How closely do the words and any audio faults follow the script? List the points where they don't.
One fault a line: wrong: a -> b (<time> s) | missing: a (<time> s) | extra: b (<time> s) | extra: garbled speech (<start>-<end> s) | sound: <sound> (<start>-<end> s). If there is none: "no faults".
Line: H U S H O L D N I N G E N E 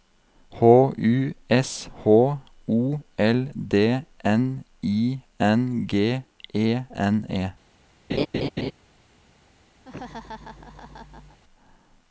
sound: laugh (8.1-8.7 s)
sound: laugh (9.8-11.4 s)